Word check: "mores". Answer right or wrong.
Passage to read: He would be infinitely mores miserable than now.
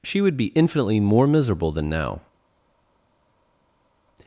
wrong